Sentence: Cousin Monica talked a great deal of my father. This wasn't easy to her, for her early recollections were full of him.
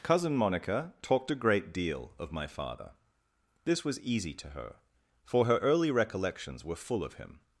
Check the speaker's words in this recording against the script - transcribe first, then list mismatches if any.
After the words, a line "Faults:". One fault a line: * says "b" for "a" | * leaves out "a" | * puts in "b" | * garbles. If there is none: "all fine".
Cousin Monica talked a great deal of my father. This was easy to her, for her early recollections were full of him.
Faults:
* says "was" for "wasn't"